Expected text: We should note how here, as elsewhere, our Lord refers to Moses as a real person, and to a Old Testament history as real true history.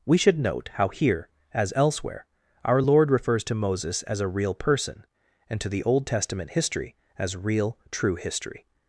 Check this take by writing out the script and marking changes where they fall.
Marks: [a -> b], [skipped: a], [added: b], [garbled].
We should note how here, as elsewhere, our Lord refers to Moses as a real person, and to [a -> the] Old Testament history as real true history.